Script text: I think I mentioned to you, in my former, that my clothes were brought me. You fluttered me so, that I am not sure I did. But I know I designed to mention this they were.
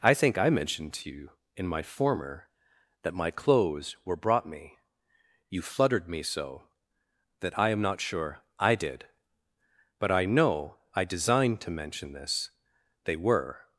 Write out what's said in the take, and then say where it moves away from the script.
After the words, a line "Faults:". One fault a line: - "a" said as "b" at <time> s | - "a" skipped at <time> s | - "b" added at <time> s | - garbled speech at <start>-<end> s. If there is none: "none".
I think I mentioned to you, in my former, that my clothes were brought me. You fluttered me so, that I am not sure I did. But I know I designed to mention this they were.
Faults:
none